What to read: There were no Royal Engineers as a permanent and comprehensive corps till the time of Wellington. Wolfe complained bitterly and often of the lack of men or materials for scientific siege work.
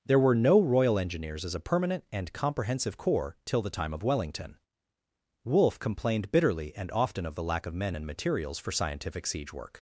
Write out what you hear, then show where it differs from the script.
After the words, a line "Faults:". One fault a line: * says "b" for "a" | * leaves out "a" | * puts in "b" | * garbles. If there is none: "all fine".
There were no Royal Engineers as a permanent and comprehensive corps till the time of Wellington. Wolfe complained bitterly and often of the lack of men and materials for scientific siege work.
Faults:
* says "and" for "or"